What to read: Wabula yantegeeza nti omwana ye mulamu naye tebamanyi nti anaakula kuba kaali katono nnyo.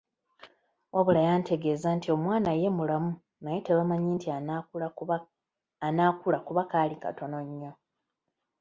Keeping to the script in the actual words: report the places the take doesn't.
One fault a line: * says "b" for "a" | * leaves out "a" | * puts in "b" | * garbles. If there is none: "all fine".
all fine